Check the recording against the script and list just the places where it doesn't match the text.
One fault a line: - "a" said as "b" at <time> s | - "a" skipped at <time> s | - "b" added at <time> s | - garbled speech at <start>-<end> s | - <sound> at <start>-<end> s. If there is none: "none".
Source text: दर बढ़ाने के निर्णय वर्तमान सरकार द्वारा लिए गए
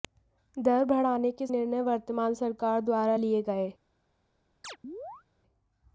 - chirp at 4.6-5.2 s